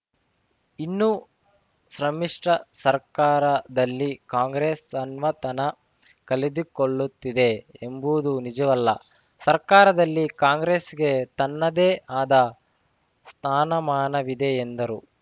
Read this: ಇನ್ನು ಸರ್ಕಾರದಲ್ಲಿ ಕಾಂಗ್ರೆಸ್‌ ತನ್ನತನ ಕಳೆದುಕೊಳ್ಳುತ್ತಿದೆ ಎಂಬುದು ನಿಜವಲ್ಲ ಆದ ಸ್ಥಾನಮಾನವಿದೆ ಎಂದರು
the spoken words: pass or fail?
fail